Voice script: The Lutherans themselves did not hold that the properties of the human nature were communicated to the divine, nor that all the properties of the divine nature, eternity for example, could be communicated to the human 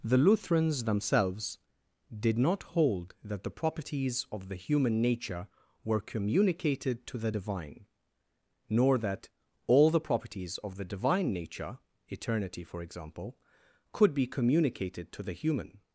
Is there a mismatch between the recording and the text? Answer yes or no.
no